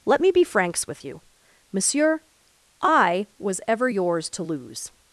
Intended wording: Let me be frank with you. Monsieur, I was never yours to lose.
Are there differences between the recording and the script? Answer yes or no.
yes